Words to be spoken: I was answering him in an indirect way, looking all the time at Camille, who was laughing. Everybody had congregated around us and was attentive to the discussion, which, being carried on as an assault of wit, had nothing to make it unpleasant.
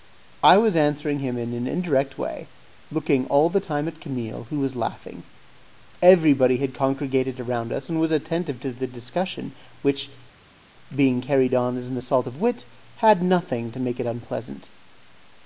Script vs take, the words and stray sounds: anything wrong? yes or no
no